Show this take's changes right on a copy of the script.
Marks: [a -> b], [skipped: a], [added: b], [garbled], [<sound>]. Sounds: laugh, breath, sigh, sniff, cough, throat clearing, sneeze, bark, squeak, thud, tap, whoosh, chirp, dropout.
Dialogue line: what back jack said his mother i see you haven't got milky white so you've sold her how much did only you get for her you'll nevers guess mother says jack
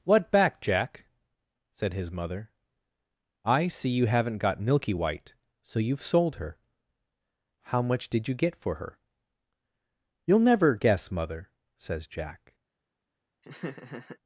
what back jack said his mother i see you haven't got milky white so you've sold her how much did [skipped: only] you get for her you'll [nevers -> never] guess mother says jack [laugh]